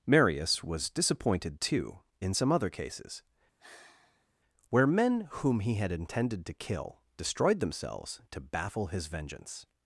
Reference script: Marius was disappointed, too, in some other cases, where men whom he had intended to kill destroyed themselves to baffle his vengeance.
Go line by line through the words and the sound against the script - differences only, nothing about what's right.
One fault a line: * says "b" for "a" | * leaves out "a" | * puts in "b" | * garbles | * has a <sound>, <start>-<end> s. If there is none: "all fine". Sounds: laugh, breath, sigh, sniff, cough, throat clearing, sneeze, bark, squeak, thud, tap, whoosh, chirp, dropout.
* has a sigh, 3.6-4.3 s